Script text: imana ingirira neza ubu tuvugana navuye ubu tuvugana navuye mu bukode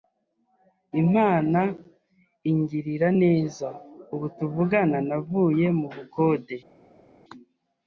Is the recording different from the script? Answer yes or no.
yes